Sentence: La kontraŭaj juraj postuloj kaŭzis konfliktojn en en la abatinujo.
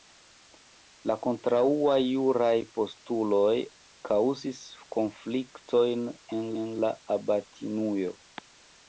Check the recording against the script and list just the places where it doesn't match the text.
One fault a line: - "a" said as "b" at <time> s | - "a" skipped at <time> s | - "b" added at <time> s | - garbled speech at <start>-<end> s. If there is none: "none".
none